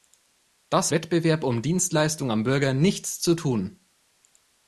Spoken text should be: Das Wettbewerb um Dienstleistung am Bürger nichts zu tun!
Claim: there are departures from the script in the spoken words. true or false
false